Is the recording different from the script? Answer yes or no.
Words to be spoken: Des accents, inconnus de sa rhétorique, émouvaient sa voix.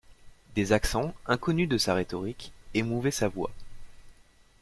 no